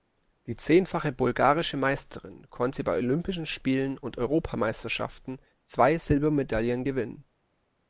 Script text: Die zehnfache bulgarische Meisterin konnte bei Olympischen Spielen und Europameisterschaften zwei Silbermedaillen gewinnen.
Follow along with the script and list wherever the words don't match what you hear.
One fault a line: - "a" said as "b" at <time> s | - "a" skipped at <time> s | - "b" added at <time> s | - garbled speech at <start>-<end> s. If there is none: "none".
none